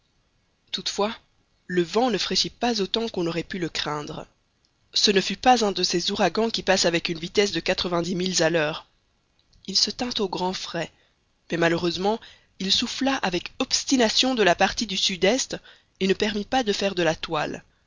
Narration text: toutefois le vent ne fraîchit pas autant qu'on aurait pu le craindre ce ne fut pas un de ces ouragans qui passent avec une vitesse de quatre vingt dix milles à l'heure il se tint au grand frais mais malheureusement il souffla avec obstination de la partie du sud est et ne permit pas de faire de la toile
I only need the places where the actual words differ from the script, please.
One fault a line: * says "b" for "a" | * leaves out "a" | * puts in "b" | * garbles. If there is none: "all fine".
all fine